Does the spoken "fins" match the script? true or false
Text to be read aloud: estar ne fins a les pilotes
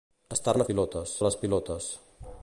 false